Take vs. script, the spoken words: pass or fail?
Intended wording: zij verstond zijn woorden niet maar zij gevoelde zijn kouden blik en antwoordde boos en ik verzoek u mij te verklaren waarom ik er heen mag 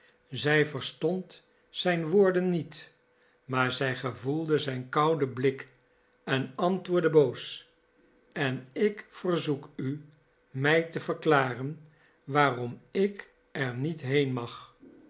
fail